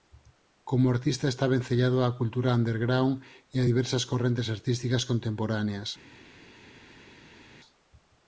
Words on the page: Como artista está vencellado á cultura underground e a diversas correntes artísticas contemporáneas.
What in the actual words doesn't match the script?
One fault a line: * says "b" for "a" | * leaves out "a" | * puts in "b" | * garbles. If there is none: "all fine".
all fine